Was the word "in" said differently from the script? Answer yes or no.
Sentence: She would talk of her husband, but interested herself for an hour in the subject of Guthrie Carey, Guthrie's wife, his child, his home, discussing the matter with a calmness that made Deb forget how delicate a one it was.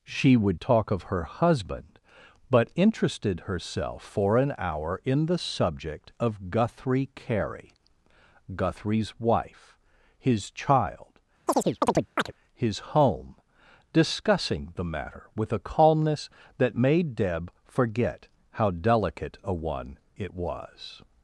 no